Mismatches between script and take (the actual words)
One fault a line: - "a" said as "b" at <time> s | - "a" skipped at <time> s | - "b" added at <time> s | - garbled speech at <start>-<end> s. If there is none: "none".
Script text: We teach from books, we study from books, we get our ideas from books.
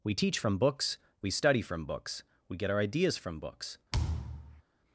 none